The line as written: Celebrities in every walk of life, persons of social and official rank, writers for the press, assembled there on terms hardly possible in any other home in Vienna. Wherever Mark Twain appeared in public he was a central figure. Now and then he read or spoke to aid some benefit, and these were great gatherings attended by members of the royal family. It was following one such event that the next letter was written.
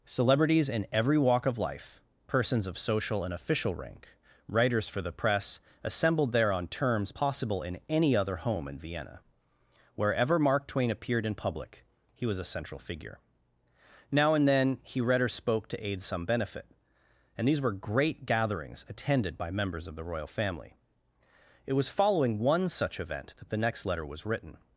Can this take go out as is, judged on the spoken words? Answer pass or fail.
fail